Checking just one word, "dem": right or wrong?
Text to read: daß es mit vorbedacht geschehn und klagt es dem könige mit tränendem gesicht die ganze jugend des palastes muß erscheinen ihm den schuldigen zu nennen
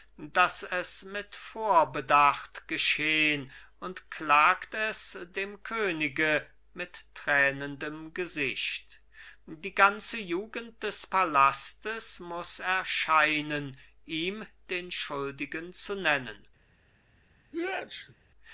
right